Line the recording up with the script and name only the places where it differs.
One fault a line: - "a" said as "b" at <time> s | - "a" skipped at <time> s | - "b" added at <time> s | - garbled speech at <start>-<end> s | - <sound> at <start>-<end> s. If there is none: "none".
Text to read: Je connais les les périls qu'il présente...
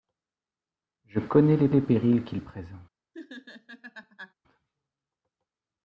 - laugh at 3.1-4.3 s